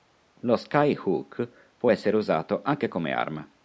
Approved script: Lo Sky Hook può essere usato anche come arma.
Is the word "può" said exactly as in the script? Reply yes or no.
yes